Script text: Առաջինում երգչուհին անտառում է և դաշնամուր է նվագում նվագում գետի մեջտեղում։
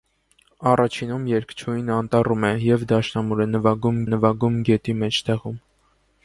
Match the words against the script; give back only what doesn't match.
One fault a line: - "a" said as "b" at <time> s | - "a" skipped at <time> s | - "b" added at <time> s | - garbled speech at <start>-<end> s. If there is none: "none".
none